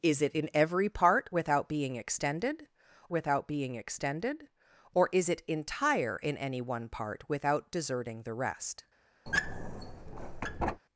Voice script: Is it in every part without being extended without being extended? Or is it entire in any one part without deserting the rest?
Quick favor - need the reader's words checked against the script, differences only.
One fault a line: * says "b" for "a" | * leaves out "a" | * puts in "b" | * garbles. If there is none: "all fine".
all fine